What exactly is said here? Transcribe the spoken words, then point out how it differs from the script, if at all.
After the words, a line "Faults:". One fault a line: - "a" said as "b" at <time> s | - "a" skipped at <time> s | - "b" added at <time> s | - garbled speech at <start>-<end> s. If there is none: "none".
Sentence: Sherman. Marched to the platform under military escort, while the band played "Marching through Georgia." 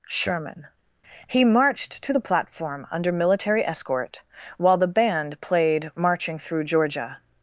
Sherman. He marched to the platform under military escort, while the band played "Marching through Georgia."
Faults:
- "He" added at 1.3 s